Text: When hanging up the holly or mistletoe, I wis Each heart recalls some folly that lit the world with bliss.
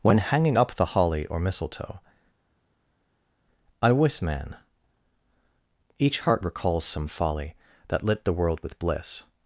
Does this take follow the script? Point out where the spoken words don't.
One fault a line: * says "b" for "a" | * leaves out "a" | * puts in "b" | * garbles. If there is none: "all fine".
* puts in "man"